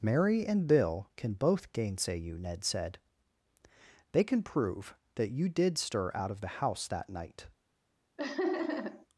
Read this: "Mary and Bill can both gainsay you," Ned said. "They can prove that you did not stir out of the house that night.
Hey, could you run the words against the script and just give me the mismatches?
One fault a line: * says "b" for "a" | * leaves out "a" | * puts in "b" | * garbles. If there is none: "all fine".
* leaves out "not"